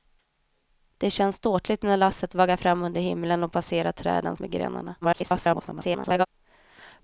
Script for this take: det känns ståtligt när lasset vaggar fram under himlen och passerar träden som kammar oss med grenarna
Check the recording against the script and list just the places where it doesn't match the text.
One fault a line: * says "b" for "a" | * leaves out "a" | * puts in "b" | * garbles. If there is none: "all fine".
* leaves out "som kammar oss"
* garbles